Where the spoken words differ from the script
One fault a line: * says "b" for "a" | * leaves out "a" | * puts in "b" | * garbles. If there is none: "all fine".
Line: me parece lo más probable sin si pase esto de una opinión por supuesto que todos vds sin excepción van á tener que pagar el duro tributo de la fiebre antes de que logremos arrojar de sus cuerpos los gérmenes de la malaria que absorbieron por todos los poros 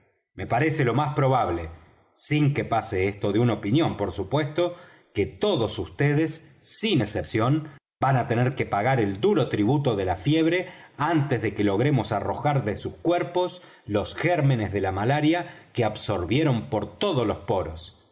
* says "que" for "si"